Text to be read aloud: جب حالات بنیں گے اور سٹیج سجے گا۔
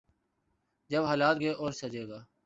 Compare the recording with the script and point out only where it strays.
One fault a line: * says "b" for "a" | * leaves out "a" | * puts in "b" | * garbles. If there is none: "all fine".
* leaves out "بنیں"
* leaves out "سٹیج"